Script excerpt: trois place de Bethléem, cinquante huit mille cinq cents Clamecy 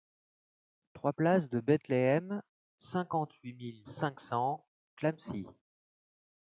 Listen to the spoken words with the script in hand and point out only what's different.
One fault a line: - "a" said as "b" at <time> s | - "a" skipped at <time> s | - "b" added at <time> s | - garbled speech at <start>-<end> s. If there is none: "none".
none